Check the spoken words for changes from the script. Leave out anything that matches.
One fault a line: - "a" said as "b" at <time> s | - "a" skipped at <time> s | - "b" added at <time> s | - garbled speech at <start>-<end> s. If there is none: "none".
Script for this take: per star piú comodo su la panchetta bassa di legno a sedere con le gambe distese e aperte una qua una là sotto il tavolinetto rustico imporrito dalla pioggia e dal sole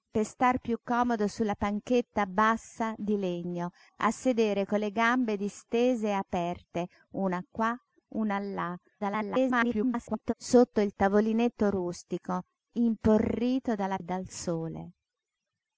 - garbled speech at 9.0-10.3 s
- "pioggia" skipped at 14.0 s